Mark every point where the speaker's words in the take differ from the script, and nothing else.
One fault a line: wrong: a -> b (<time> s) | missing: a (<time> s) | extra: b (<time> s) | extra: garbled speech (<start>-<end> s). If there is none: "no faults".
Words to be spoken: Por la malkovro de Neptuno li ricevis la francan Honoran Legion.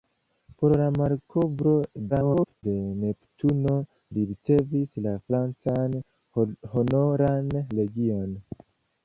extra: garbled speech (2.1-2.6 s)